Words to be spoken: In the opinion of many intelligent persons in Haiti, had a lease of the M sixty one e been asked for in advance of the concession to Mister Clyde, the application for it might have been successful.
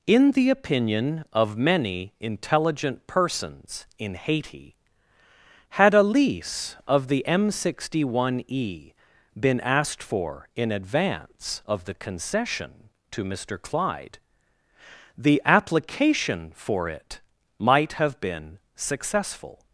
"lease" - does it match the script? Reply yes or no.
yes